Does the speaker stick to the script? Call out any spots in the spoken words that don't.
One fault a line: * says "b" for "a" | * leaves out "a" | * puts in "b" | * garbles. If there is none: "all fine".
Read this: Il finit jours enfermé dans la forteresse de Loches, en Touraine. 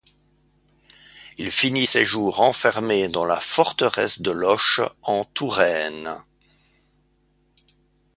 * puts in "ses"